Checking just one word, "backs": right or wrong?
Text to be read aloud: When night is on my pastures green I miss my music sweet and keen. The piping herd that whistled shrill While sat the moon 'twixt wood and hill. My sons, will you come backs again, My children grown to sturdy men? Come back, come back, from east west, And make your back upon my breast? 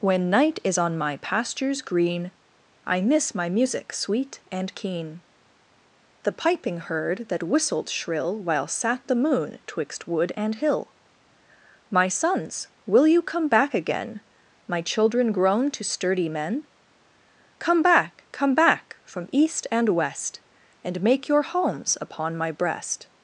wrong